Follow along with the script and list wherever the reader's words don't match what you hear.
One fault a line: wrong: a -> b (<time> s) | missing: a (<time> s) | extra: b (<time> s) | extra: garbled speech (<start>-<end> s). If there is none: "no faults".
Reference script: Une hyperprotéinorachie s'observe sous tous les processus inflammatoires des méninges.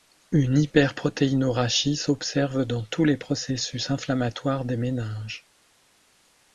wrong: sous -> dans (2.6 s)